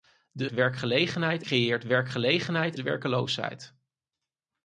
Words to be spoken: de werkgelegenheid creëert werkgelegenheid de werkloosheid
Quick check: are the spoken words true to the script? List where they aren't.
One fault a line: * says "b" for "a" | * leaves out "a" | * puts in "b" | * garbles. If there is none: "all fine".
all fine